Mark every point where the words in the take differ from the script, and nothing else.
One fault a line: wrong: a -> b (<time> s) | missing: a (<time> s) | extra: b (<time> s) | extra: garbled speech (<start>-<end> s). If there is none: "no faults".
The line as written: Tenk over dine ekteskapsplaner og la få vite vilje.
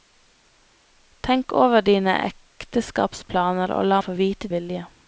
no faults